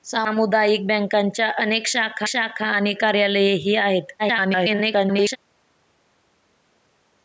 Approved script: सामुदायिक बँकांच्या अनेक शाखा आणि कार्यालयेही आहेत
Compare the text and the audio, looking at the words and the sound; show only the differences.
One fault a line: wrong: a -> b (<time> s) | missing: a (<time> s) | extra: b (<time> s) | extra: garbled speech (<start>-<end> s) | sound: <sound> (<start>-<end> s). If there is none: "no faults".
extra: शाखा (2.3 s)
extra: garbled speech (4.2-5.4 s)